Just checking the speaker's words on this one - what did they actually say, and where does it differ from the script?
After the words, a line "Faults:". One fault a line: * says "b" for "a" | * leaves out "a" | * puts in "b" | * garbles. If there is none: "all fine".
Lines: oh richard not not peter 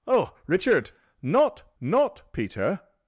oh richard not not peter
Faults:
all fine